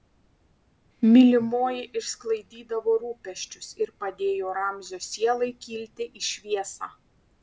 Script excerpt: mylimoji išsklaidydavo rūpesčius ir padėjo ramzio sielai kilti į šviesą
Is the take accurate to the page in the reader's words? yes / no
yes